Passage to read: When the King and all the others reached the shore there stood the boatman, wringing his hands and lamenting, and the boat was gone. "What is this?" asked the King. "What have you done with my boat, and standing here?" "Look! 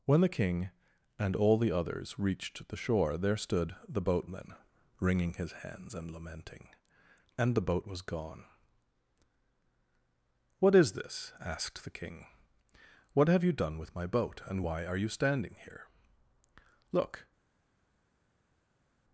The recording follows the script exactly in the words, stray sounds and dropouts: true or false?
false